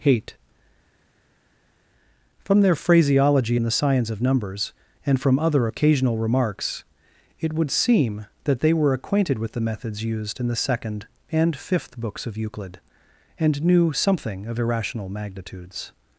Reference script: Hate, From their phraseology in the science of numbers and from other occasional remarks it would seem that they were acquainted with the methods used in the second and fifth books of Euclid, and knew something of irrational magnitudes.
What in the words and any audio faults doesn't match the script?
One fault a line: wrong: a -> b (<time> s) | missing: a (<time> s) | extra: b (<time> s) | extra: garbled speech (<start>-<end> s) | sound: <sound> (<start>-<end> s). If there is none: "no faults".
no faults